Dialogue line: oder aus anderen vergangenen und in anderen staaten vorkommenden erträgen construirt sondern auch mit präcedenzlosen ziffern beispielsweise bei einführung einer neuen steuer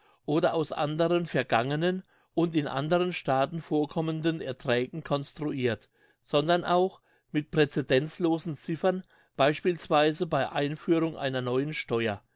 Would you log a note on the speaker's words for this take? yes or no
no